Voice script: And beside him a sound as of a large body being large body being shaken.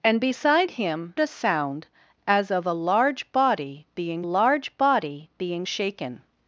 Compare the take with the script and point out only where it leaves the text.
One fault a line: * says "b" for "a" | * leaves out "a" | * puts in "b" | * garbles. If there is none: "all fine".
all fine